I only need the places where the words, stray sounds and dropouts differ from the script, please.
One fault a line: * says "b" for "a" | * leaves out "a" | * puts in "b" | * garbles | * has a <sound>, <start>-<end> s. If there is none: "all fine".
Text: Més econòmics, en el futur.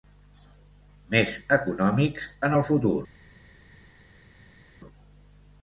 all fine